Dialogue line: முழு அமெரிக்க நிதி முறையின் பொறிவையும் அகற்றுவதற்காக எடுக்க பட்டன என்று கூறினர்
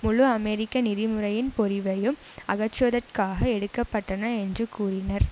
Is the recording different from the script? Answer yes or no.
no